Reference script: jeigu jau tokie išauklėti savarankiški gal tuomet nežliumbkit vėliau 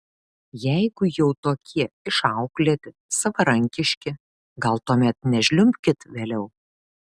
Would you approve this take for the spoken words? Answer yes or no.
yes